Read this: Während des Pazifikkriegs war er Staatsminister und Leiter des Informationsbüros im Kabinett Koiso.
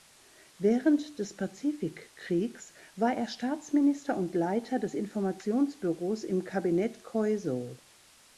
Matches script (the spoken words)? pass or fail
pass